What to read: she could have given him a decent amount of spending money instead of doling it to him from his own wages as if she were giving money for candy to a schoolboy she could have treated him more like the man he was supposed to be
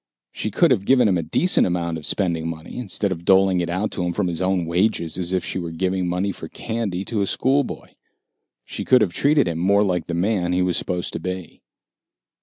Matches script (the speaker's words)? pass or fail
fail